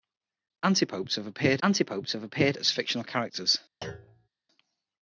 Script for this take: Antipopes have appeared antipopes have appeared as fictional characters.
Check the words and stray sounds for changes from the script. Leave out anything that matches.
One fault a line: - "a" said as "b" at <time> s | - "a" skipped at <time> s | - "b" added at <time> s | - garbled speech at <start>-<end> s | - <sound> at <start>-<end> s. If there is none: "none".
- thud at 3.8-4.3 s